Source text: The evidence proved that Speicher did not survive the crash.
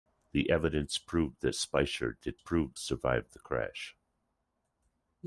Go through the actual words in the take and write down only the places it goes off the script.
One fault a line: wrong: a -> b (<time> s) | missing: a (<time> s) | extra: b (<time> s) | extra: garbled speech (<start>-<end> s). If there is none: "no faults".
wrong: not -> proved (2.4 s)